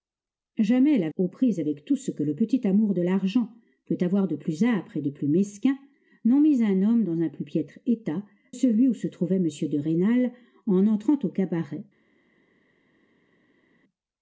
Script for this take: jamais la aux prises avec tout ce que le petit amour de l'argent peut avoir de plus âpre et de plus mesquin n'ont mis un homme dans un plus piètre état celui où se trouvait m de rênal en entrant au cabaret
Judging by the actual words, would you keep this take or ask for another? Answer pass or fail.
pass